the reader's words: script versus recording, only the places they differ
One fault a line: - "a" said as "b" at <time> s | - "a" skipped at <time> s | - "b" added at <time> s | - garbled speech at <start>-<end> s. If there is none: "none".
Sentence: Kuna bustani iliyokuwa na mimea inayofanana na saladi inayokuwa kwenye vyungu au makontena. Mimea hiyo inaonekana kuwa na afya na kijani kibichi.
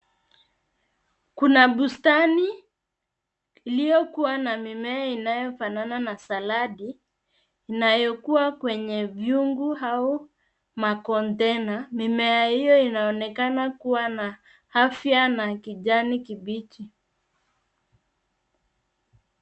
none